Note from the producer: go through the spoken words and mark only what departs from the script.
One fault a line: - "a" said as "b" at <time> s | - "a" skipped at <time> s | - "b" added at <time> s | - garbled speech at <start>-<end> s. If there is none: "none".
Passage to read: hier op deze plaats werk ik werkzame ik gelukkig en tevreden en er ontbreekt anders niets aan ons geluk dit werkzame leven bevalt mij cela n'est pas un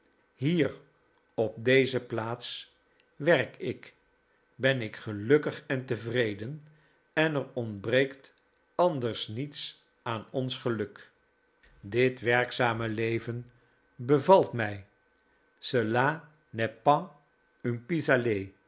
- "werkzame" said as "ben" at 4.5 s